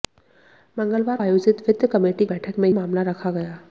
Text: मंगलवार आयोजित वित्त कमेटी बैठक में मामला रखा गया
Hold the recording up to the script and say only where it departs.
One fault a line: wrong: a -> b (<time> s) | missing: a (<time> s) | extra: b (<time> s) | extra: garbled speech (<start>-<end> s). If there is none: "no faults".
no faults